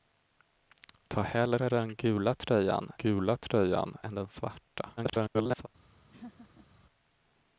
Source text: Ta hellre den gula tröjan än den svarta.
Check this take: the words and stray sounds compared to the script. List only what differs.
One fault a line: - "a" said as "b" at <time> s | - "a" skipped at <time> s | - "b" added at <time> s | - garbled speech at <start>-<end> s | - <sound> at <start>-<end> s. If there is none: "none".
- "gula tröjan" added at 3.0 s
- garbled speech at 5.0-5.7 s
- laugh at 6.1-6.7 s